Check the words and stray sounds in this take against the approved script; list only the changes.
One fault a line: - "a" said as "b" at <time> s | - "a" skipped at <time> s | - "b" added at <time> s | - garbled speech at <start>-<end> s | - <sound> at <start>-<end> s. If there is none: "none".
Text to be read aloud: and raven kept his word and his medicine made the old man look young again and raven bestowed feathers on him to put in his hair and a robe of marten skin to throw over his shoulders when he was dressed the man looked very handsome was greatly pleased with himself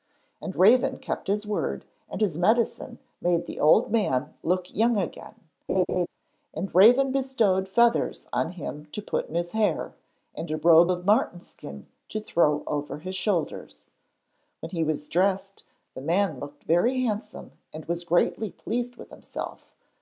- laugh at 5.7-6.1 s
- "and" added at 17.7 s